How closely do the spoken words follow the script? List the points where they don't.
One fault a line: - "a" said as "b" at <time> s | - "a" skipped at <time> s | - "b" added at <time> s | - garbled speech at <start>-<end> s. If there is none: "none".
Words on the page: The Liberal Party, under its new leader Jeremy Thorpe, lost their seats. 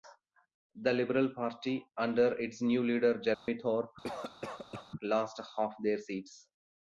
- "half" added at 5.6 s